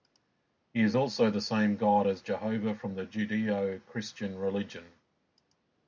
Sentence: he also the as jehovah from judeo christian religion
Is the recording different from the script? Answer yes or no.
yes